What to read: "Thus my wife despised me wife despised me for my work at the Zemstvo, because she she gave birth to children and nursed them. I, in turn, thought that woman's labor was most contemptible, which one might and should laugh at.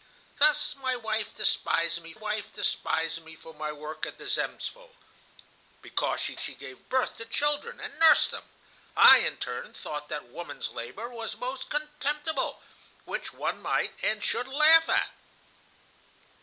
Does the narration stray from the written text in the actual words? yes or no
no